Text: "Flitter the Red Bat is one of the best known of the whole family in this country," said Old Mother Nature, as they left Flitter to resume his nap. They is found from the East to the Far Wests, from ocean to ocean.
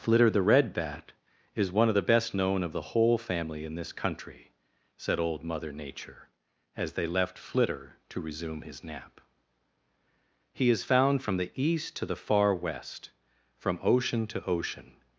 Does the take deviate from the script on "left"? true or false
false